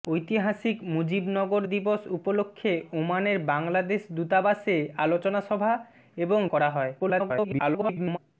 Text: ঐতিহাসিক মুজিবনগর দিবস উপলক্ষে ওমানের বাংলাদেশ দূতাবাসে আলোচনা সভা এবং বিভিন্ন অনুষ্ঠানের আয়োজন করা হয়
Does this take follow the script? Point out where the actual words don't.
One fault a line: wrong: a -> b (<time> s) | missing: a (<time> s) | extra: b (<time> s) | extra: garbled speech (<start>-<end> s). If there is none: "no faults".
missing: বিভিন্ন অনুষ্ঠানের আয়োজন (6.4 s)
extra: garbled speech (7.0-8.2 s)